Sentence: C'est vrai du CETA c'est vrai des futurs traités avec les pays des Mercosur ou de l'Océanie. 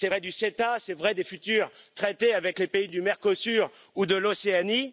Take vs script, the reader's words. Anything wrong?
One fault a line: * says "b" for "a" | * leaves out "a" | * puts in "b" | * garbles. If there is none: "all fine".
* says "du" for "des"